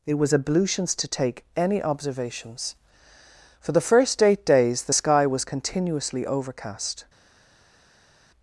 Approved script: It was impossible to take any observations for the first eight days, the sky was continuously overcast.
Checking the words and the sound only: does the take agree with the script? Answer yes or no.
no